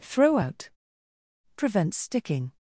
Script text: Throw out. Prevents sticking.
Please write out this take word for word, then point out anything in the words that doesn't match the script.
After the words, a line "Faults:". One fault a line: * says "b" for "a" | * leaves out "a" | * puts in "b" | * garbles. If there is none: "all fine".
Throw out. Prevents sticking.
Faults:
all fine